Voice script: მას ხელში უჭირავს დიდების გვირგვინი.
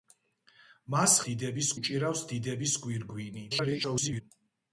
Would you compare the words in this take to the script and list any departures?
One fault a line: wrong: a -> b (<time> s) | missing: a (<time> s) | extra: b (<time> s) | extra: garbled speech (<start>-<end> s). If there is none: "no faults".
wrong: ხელში -> დიდების (1.3 s)
extra: garbled speech (3.5-4.2 s)